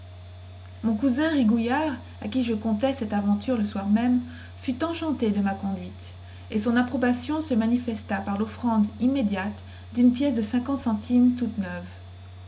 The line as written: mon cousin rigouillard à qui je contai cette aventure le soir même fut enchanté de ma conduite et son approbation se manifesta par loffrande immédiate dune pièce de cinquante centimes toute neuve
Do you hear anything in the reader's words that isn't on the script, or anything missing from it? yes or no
no